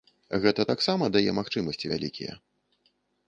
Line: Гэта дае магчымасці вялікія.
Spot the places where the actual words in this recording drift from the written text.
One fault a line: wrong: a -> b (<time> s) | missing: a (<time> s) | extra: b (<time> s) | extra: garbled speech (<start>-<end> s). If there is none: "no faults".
extra: таксама (0.7 s)